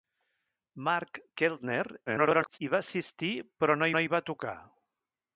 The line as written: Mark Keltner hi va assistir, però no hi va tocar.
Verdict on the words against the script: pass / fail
fail